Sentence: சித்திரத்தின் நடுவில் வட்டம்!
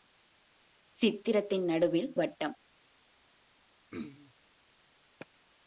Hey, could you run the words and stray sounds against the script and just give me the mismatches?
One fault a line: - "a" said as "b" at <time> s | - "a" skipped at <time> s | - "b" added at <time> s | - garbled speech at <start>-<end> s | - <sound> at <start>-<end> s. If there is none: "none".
- throat clearing at 3.9-4.3 s